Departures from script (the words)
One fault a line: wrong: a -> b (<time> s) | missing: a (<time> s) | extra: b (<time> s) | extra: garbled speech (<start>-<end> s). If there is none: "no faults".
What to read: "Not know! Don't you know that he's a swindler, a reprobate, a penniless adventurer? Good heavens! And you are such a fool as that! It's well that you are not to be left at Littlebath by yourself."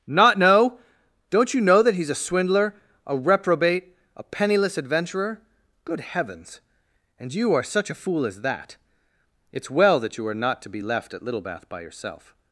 no faults